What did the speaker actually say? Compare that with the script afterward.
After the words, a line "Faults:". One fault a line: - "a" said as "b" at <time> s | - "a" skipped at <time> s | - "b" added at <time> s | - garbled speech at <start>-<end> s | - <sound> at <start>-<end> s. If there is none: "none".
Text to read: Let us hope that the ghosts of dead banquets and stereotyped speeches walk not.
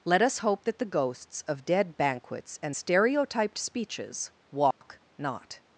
Let us hope that the ghosts of dead banquets and stereotyped speeches walk not.
Faults:
- dropout at 4.7-4.8 s